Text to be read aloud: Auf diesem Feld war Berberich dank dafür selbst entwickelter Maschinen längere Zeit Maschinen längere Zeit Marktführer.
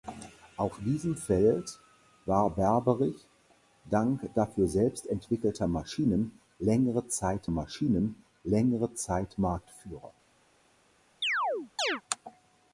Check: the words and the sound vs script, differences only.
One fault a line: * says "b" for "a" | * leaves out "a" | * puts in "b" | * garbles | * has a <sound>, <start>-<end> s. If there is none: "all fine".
* has a chirp, 11.2-12.0 s